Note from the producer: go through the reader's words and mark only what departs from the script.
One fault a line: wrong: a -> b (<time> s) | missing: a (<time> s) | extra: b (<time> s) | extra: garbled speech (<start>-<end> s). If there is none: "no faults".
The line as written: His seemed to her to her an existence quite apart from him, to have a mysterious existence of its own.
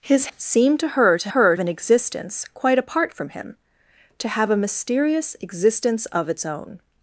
no faults